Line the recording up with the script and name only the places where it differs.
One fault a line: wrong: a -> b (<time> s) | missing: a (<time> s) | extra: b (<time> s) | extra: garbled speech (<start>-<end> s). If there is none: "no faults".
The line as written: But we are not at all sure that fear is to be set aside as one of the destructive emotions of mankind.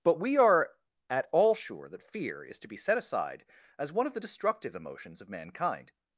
missing: not (0.7 s)